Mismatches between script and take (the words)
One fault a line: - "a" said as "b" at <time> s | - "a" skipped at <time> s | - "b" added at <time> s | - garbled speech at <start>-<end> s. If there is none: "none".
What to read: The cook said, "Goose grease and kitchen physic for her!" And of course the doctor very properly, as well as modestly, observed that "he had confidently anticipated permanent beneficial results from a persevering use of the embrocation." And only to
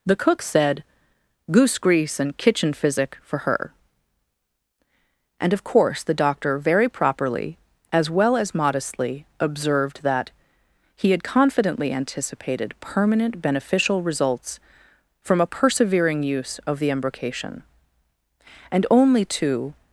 none